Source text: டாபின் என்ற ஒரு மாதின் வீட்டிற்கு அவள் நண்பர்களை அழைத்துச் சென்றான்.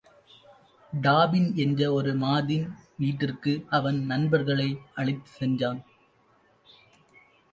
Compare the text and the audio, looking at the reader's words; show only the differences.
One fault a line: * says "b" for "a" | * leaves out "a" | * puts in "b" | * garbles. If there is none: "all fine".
* says "அவன்" for "அவள்"